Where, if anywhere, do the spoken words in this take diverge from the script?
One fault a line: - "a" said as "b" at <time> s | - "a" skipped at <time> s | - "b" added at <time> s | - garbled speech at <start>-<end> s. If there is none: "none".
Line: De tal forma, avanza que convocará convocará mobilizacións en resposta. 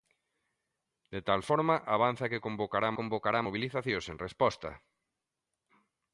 none